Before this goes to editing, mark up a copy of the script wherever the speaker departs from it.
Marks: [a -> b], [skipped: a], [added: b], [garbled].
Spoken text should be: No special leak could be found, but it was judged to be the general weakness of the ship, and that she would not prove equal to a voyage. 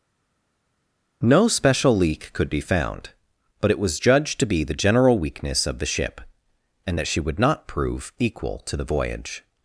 No special leak could be found, but it was judged to be the general weakness of the ship, and that she would not prove equal to [a -> the] voyage.